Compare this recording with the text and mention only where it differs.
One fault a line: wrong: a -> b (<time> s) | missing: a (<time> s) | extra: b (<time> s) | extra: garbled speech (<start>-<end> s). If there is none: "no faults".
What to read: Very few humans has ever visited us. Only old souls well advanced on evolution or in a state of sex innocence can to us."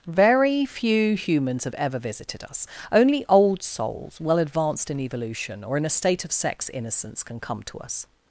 wrong: has -> have (1.6 s)
wrong: on -> in (4.9 s)
extra: come (7.4 s)